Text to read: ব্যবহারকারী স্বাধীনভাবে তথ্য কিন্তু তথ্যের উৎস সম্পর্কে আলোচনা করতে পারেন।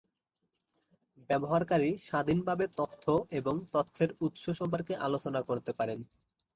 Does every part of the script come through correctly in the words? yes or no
no